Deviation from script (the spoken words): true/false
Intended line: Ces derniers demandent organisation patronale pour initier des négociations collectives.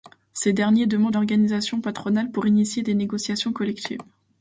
false